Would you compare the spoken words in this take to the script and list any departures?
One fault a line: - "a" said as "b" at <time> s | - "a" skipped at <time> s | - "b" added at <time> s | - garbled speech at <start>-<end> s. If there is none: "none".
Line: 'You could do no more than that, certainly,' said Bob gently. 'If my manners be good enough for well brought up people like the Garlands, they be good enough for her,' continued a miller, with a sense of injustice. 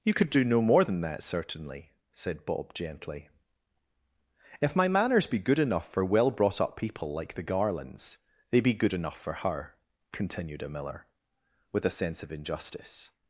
none